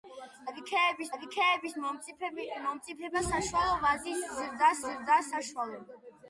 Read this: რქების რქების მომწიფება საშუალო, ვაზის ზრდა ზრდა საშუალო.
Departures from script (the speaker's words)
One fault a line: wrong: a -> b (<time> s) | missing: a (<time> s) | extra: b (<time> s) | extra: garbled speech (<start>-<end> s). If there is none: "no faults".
no faults